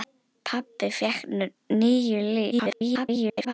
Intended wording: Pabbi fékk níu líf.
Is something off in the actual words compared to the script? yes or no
yes